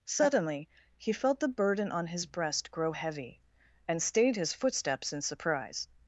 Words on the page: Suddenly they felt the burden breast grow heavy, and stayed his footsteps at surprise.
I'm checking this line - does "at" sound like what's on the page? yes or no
no